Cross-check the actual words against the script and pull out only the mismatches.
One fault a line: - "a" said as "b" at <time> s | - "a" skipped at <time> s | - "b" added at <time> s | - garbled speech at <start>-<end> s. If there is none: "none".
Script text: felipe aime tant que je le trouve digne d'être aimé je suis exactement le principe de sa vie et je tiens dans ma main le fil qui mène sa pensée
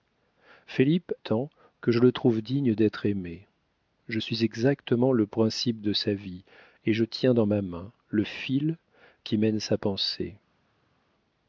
- "aime" skipped at 1.1 s